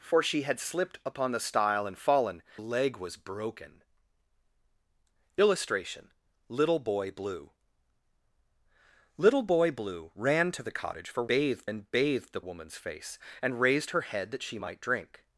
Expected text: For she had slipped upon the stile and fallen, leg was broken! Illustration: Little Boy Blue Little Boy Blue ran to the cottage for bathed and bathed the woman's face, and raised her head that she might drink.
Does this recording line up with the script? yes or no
yes